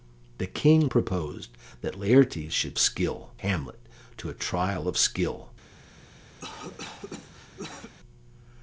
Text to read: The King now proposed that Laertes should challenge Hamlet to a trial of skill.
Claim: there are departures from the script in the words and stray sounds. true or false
true